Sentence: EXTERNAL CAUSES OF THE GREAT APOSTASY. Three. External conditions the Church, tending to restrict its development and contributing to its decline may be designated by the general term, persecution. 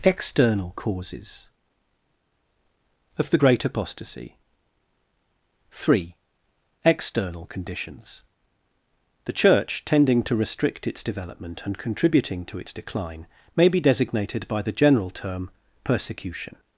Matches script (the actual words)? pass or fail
pass